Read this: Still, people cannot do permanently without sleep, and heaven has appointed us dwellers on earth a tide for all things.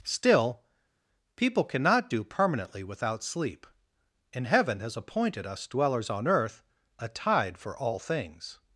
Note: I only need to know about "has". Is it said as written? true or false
true